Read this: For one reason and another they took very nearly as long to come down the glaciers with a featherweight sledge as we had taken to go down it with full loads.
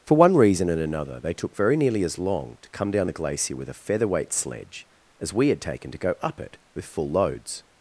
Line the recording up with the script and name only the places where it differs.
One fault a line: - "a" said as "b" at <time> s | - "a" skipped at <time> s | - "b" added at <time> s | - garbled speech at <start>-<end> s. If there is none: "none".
- "glaciers" said as "glacier" at 3.1 s
- "down" said as "up" at 6.2 s